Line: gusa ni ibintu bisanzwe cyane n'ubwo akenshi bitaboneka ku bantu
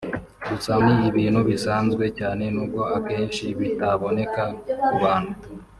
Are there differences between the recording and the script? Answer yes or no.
no